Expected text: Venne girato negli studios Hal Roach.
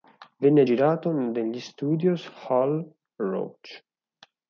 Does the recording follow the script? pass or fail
pass